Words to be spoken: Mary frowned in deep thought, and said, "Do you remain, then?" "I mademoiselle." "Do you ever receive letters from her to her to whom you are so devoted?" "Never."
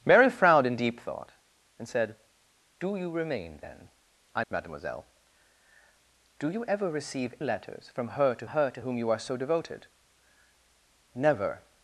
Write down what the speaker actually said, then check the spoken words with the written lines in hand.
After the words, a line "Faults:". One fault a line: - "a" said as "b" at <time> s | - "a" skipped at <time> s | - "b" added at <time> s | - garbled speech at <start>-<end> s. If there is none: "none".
Mary frowned in deep thought, and said, "Do you remain, then?" "I mademoiselle." "Do you ever receive letters from her to her to whom you are so devoted?" "Never."
Faults:
none